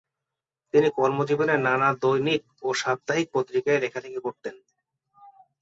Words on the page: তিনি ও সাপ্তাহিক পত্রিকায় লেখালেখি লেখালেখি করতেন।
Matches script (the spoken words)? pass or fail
fail